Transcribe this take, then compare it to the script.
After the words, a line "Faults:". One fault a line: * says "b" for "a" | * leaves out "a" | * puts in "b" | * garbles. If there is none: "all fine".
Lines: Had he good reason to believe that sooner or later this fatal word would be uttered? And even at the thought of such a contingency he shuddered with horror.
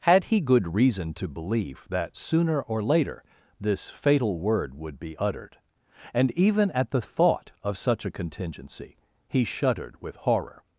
Had he good reason to believe that sooner or later this fatal word would be uttered? And even at the thought of such a contingency he shuddered with horror.
Faults:
all fine